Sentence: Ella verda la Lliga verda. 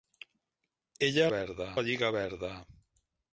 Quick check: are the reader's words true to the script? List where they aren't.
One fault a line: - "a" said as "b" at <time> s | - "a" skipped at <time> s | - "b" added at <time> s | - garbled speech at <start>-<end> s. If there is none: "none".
none